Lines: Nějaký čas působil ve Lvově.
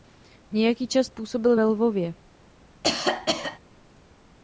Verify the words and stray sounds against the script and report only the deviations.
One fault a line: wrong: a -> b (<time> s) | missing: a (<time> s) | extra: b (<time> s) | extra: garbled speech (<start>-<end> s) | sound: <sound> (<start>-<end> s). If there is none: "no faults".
sound: cough (2.8-3.6 s)